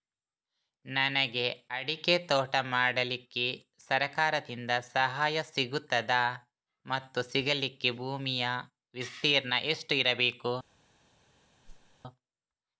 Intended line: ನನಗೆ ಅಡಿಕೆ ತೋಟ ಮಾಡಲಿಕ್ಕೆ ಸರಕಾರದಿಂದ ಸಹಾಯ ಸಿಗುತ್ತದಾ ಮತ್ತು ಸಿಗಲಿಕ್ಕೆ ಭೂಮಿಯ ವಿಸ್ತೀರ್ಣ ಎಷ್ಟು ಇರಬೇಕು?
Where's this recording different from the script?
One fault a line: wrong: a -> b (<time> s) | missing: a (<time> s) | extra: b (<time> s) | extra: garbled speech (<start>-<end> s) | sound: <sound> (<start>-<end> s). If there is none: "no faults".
sound: whoosh (11.6-12.0 s)